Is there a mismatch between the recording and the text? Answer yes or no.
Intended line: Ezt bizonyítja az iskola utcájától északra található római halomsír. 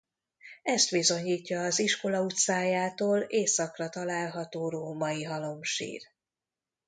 no